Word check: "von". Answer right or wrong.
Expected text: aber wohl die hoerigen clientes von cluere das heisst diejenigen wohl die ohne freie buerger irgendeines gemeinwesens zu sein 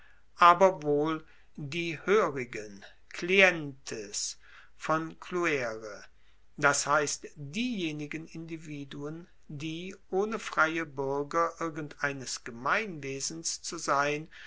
right